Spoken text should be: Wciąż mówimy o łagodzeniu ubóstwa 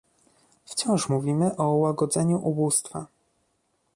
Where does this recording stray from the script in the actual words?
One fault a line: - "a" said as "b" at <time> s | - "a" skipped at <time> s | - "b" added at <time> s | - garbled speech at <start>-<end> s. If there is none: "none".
none